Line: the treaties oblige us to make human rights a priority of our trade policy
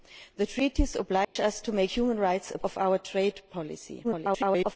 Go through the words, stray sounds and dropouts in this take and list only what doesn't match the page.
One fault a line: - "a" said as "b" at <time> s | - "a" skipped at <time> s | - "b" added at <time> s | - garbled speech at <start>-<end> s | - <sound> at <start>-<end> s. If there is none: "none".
- dropout at 1.2-1.4 s
- "priority" skipped at 2.6 s
- garbled speech at 4.0-4.8 s